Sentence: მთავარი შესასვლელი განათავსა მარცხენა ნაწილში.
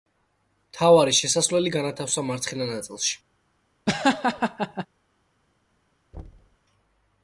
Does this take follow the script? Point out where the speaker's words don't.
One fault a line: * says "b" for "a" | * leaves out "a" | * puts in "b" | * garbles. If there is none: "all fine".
all fine